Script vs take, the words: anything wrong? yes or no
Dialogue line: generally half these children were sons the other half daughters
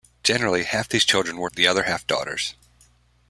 yes